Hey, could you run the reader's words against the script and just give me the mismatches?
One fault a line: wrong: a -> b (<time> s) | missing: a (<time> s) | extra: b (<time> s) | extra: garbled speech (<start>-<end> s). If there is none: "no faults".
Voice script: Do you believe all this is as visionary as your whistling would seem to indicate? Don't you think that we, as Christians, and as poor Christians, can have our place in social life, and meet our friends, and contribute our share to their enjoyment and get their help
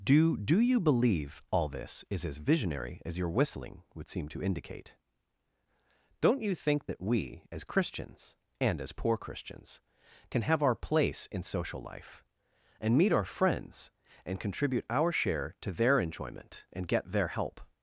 extra: do (0.3 s)